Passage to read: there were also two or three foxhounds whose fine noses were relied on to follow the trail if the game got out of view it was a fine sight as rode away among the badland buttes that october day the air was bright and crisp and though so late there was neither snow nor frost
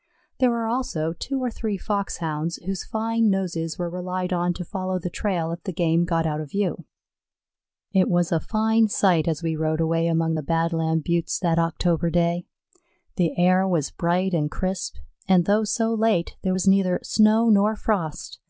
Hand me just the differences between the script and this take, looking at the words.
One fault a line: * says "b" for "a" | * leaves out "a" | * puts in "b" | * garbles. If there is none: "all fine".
* puts in "we"